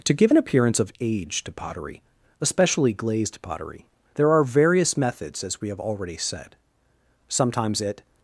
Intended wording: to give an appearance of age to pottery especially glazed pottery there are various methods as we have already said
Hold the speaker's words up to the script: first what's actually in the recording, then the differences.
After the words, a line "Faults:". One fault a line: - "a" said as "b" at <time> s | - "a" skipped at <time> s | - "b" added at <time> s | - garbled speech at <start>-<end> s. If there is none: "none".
to give an appearance of age to pottery especially glazed pottery there are various methods as we have already said sometimes it
Faults:
- "sometimes it" added at 7.3 s